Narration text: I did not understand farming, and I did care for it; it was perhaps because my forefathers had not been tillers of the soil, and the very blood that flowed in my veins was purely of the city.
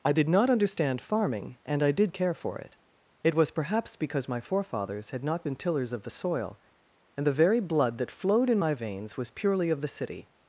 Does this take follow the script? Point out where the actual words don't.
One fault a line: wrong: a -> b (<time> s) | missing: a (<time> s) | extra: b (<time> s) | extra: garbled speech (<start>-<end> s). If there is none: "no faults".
no faults